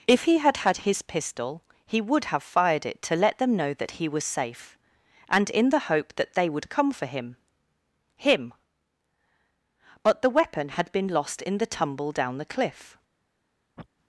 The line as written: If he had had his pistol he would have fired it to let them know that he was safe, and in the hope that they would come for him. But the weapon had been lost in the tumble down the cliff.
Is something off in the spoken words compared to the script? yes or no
yes